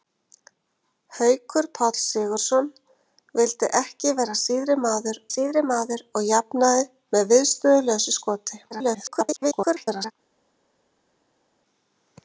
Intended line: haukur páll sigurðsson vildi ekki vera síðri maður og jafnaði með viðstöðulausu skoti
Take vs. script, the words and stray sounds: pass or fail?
fail